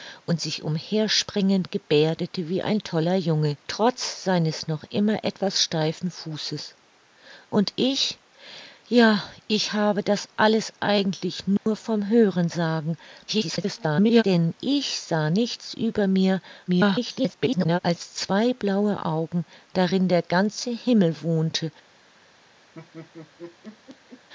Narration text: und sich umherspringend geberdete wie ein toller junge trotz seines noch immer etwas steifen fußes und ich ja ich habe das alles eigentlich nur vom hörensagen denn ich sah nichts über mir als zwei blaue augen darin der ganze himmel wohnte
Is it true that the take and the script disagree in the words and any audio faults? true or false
true